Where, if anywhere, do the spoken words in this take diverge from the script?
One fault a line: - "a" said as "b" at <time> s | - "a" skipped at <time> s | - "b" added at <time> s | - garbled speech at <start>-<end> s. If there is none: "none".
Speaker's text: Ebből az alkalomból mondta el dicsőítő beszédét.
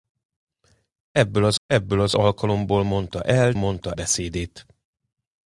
- "ebből az" added at 1.7 s
- "dicsőítő" said as "mondta" at 3.5 s